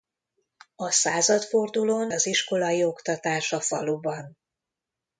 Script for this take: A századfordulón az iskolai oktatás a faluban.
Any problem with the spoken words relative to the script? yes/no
no